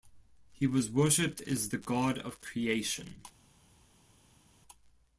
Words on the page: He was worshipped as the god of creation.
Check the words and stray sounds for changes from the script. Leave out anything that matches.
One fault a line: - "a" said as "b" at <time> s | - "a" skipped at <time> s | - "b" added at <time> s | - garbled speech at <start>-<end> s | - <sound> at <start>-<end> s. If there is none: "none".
none